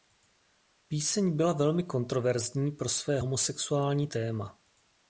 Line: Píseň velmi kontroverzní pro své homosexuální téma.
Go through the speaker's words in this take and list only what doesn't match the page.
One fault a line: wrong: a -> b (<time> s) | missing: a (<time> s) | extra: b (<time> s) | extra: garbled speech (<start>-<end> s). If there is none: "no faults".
extra: byla (1.4 s)